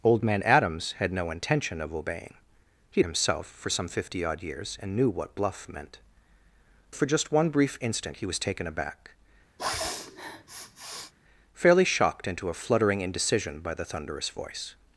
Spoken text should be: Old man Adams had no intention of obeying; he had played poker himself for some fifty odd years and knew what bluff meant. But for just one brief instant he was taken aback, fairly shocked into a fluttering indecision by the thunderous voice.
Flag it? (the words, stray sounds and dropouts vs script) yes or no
yes